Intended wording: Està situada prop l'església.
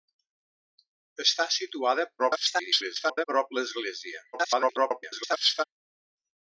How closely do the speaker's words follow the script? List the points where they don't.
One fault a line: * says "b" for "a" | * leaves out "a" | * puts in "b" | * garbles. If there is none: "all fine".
* garbles
* garbles